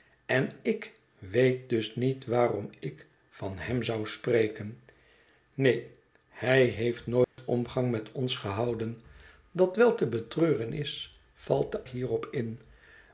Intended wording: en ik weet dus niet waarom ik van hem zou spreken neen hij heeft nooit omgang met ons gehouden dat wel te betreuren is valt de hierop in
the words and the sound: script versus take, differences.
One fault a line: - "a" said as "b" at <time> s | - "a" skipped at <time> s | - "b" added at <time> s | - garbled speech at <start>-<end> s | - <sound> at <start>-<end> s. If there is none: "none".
- dropout at 7.2-7.4 s